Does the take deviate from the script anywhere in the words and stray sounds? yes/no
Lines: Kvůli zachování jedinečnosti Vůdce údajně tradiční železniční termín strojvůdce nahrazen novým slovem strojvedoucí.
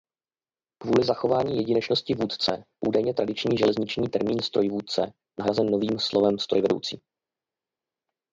no